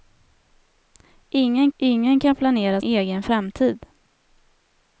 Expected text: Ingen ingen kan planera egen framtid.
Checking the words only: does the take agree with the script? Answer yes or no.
yes